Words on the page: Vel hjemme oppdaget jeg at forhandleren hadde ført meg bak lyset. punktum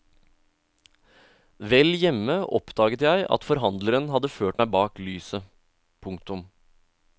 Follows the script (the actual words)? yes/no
yes